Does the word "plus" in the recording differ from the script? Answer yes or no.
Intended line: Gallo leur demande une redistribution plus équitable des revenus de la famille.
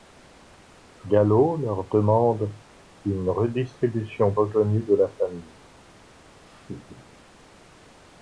yes